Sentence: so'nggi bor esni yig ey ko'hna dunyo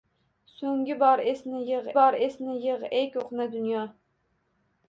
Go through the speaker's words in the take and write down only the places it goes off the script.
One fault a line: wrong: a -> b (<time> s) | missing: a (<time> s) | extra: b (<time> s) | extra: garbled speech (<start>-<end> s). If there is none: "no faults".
extra: bor esni yig (2.0 s)